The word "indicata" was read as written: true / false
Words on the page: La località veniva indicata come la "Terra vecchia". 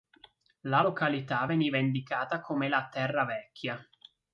true